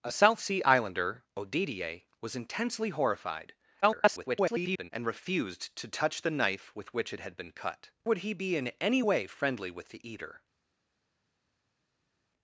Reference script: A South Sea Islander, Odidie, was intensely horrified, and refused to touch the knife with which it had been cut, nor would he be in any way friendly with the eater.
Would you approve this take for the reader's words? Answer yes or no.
no